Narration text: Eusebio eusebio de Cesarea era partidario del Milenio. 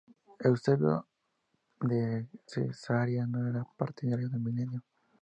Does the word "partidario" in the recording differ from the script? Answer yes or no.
no